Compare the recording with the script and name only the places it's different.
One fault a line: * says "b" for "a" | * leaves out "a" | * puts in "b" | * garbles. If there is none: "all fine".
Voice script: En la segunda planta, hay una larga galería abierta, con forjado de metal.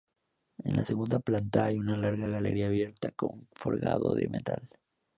all fine